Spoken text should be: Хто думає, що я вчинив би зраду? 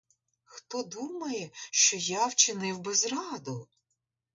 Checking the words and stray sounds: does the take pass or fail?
pass